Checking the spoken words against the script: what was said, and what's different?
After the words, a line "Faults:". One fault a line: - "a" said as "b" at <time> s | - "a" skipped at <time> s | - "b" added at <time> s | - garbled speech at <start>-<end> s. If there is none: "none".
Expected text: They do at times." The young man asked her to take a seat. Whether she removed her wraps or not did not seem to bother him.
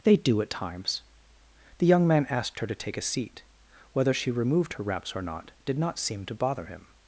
They do at times." The young man asked her to take a seat. Whether she removed her wraps or not did not seem to bother him.
Faults:
none